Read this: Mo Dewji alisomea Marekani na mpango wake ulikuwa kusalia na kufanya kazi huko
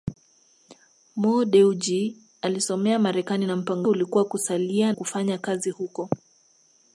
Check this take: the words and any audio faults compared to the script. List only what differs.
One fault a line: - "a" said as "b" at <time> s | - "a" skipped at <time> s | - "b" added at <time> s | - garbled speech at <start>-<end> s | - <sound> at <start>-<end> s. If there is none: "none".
- "wake" skipped at 3.9 s
- "na" skipped at 4.9 s